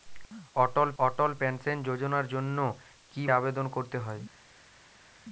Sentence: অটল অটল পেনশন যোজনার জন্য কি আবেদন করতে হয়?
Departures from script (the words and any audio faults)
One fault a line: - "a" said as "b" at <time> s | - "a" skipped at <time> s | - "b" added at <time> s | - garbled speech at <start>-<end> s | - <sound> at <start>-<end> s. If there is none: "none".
none